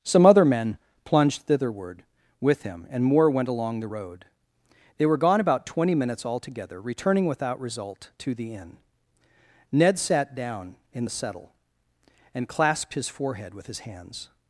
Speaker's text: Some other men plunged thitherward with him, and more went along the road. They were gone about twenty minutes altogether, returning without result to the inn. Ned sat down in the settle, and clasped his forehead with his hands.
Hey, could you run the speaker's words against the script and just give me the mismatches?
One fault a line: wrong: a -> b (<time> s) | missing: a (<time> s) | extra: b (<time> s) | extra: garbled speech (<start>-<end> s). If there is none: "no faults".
no faults